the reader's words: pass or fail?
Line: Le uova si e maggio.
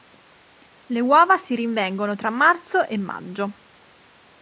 fail